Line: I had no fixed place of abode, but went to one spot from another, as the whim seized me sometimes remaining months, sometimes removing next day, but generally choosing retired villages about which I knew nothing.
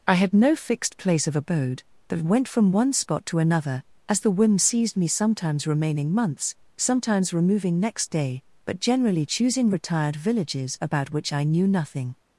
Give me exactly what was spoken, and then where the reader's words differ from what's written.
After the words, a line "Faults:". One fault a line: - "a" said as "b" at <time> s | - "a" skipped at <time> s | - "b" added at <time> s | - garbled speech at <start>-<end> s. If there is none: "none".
I had no fixed place of abode, but went from one spot to another, as the whim seized me sometimes remaining months, sometimes removing next day, but generally choosing retired villages about which I knew nothing.
Faults:
- "to" said as "from" at 2.5 s
- "from" said as "to" at 3.3 s